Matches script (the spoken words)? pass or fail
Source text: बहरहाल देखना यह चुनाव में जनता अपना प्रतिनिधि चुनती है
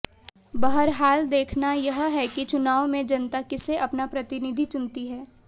fail